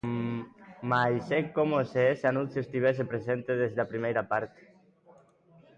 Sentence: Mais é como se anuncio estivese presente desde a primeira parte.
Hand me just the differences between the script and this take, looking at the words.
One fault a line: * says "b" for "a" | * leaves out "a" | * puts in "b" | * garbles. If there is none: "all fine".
* puts in "ese"